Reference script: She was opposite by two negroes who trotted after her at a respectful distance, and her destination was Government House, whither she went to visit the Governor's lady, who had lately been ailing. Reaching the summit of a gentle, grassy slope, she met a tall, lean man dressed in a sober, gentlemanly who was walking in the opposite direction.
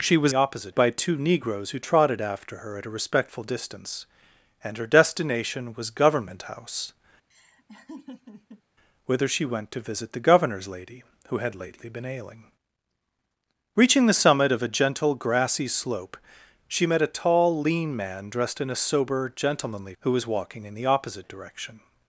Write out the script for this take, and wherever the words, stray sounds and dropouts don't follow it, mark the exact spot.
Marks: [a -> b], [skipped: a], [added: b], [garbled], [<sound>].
She was opposite by two negroes who trotted after her at a respectful distance, and her destination was Government House, [laugh] whither she went to visit the Governor's lady, who had lately been ailing. Reaching the summit of a gentle, grassy slope, she met a tall, lean man dressed in a sober, gentlemanly who was walking in the opposite direction.